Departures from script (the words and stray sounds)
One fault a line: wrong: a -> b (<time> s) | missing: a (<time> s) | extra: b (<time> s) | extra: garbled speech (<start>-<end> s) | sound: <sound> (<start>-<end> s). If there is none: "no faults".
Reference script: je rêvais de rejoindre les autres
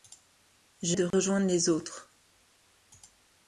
missing: rêvais (1.0 s)
sound: dropout (1.1-1.1 s)